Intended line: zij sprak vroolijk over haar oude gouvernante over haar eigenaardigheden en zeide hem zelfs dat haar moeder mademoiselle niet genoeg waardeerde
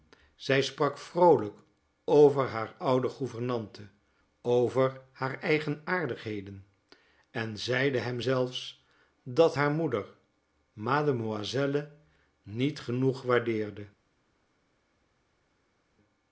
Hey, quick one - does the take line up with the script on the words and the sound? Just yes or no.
yes